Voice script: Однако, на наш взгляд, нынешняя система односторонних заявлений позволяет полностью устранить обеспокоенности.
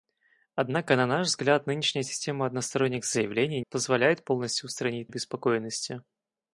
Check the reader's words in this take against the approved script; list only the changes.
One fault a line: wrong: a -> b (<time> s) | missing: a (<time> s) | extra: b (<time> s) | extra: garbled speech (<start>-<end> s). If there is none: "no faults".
no faults